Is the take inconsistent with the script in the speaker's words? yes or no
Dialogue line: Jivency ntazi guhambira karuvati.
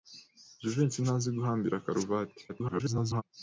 yes